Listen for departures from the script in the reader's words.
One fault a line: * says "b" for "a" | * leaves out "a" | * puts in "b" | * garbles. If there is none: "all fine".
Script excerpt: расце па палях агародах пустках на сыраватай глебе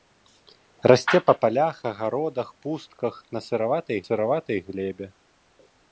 * puts in "сыраватай"